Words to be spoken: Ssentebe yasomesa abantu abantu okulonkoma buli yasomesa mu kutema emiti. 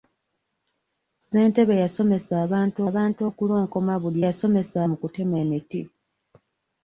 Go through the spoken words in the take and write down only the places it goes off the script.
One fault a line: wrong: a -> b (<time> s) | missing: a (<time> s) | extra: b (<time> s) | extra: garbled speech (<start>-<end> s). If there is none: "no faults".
no faults